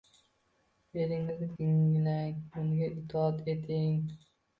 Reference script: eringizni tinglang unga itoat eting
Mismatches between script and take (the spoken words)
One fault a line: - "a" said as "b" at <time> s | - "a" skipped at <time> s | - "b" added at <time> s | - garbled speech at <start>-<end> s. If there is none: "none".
none